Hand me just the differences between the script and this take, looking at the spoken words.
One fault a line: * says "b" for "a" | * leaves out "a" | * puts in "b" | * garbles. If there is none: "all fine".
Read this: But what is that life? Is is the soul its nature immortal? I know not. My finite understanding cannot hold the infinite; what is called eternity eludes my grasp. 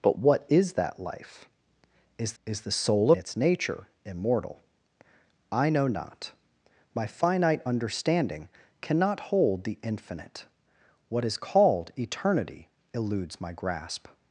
all fine